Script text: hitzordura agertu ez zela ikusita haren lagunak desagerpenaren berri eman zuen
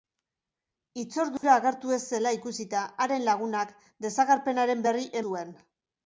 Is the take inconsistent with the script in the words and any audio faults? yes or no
yes